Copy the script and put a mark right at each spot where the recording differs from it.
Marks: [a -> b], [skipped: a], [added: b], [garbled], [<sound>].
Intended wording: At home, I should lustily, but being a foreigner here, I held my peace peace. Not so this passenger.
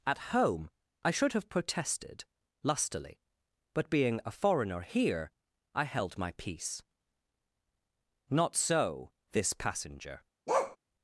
At home, I should [added: have protested] lustily, but being a foreigner here, I held my peace [skipped: peace.] Not so this passenger. [bark]